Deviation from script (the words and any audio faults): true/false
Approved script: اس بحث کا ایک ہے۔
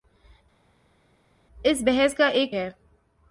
false